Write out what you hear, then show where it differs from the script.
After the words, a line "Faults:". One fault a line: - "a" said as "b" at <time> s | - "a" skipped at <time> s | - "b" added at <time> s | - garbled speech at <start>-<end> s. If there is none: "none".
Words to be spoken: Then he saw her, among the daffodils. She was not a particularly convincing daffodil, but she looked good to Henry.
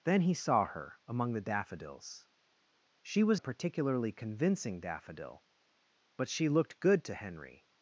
Then he saw her, among the daffodils. She was a particularly convincing daffodil, but she looked good to Henry.
Faults:
- "not" skipped at 3.4 s